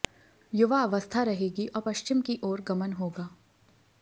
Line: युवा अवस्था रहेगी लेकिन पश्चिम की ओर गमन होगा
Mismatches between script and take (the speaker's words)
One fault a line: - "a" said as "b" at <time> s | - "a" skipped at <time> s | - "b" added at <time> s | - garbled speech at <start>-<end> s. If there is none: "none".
- "लेकिन" said as "और" at 1.7 s